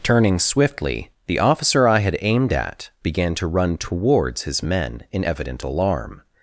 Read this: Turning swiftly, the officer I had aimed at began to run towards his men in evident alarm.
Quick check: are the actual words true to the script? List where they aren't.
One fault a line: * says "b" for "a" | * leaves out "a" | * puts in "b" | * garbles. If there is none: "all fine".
all fine